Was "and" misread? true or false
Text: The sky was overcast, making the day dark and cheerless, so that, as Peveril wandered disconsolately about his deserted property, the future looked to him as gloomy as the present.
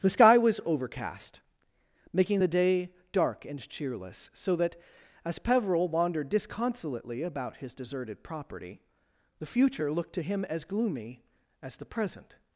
false